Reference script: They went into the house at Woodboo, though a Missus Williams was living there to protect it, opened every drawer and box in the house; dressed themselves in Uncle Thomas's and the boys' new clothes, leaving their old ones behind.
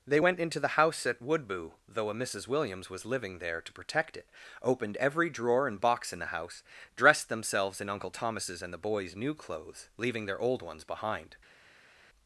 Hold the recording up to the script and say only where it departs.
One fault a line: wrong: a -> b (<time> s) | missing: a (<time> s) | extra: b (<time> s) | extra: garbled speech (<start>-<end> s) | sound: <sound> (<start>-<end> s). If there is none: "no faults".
no faults